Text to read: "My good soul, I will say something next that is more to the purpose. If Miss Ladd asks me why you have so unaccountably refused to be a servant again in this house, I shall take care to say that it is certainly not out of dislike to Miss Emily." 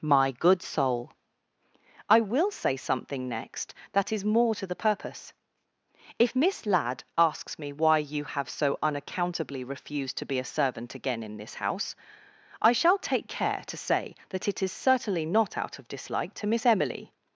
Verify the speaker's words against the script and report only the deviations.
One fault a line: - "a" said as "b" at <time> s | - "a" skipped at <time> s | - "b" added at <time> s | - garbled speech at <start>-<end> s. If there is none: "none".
none